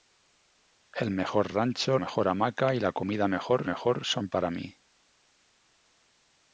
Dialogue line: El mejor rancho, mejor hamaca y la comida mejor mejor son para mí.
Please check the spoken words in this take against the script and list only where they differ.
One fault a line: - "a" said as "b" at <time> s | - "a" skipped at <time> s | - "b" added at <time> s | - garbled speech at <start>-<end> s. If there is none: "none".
none